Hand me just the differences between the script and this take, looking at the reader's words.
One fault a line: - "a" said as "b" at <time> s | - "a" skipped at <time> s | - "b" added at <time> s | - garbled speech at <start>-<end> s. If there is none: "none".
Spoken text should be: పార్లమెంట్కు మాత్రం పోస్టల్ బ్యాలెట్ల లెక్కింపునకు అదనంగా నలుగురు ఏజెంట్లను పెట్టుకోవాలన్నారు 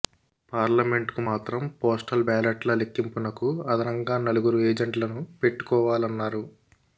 none